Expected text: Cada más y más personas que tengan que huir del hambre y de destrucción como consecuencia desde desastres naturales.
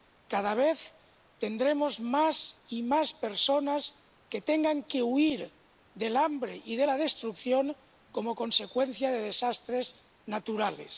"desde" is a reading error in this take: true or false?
true